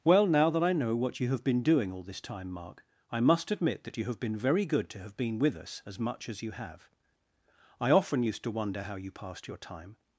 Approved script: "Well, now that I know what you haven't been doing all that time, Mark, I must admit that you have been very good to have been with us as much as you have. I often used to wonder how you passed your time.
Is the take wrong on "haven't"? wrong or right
wrong